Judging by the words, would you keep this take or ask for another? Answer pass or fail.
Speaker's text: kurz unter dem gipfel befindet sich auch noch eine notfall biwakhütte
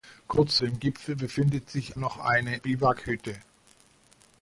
fail